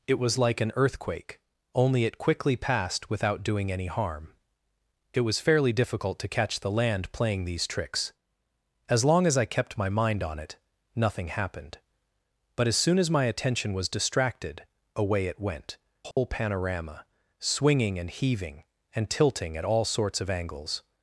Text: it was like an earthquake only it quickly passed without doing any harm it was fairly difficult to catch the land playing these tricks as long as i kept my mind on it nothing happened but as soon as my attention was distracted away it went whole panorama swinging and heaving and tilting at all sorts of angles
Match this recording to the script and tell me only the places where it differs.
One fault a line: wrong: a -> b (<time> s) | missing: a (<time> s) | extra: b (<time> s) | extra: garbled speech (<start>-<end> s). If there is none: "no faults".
no faults